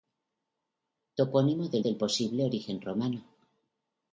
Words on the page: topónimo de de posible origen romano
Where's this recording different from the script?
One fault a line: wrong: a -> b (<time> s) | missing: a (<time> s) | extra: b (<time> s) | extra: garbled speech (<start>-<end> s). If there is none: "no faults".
no faults